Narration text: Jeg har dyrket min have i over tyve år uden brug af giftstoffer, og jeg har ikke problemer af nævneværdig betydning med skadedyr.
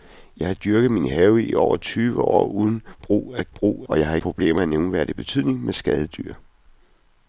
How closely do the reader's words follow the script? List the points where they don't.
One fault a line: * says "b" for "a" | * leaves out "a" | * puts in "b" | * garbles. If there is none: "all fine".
* says "brug" for "giftstoffer"
* leaves out "ikke"